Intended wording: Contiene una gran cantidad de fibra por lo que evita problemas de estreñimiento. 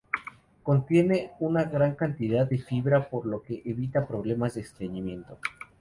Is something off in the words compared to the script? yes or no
no